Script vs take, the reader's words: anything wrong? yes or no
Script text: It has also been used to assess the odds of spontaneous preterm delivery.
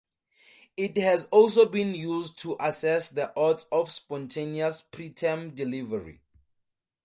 no